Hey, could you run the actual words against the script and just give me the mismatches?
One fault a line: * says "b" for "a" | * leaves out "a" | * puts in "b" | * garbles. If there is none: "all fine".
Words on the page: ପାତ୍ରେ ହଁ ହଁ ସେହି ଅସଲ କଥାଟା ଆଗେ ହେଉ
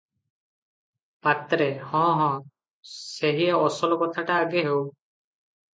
all fine